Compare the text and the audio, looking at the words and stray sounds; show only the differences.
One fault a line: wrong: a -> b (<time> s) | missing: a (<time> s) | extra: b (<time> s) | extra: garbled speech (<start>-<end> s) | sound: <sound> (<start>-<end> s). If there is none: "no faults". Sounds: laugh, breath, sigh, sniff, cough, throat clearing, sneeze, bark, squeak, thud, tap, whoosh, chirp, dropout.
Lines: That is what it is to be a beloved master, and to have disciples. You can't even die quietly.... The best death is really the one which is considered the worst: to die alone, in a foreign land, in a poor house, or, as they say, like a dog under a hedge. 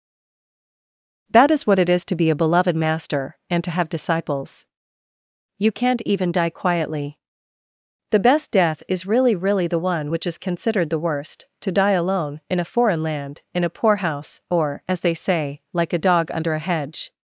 extra: really (9.3 s)